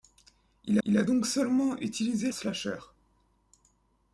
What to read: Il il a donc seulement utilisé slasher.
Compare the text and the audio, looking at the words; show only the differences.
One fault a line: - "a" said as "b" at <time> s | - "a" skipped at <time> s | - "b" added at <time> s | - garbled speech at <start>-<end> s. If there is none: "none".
none